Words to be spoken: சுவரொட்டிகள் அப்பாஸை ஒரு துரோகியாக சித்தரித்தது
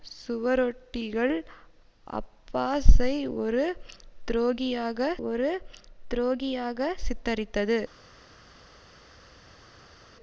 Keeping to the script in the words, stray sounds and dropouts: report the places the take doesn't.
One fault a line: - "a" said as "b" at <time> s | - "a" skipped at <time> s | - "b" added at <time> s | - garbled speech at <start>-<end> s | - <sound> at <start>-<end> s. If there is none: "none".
- "ஒரு துரோகியாக" added at 5.2 s